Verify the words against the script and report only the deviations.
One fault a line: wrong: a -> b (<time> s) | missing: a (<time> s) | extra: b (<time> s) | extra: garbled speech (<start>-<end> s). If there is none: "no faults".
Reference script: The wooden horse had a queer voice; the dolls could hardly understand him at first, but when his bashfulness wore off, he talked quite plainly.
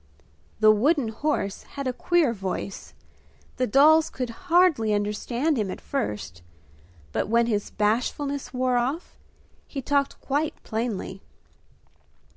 no faults